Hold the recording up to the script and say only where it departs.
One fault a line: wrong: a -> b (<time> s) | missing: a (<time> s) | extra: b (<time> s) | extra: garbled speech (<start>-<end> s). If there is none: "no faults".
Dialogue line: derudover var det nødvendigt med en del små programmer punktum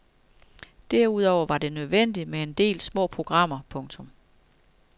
no faults